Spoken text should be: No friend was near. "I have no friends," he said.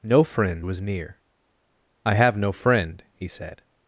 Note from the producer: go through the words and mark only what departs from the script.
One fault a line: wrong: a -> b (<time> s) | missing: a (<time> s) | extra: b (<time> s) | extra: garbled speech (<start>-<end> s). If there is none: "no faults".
wrong: friends -> friend (2.5 s)